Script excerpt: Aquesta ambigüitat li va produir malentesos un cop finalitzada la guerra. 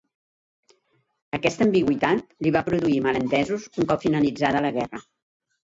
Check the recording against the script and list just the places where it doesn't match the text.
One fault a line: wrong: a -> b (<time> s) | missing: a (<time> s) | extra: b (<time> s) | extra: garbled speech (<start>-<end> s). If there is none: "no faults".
no faults